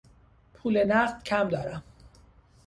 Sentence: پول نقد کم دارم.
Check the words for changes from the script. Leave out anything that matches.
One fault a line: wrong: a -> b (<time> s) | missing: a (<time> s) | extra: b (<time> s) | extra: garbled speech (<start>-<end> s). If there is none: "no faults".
no faults